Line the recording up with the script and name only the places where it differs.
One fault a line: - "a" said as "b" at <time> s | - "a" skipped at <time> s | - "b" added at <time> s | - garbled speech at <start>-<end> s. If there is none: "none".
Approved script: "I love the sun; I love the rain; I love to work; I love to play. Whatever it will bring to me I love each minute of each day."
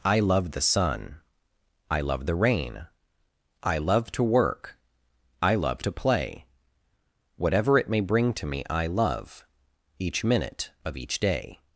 - "will" said as "may" at 7.9 s